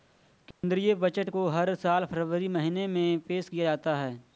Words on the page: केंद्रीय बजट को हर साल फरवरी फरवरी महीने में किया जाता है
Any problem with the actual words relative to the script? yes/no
yes